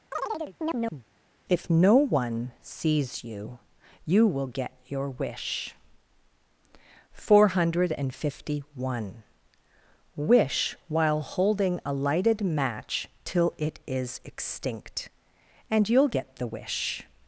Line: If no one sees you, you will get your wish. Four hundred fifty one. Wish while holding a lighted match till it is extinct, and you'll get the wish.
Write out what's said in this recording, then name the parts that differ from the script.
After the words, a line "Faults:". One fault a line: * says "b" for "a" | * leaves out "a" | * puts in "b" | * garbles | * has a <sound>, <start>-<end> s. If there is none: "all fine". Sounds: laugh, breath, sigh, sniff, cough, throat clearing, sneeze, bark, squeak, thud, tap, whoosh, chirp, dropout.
If no one sees you, you will get your wish. Four hundred fifty one. Wish while holding a lighted match till it is extinct, and you'll get the wish.
Faults:
* has a chirp, 0.1-1.1 s